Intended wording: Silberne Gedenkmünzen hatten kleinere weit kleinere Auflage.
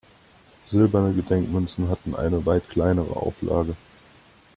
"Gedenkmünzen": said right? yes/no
yes